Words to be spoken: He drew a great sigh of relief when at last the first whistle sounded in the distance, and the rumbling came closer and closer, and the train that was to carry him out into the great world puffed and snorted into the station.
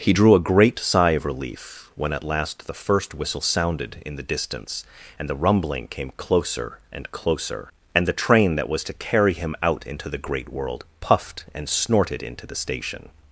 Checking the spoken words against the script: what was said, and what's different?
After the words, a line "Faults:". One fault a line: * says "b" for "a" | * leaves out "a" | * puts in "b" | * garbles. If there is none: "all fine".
He drew a great sigh of relief when at last the first whistle sounded in the distance, and the rumbling came closer and closer, and the train that was to carry him out into the great world puffed and snorted into the station.
Faults:
all fine